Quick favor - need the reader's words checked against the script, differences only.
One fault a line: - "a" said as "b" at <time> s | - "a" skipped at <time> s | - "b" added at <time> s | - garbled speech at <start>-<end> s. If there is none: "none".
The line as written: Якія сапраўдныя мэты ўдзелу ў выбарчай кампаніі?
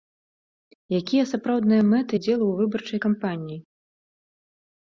none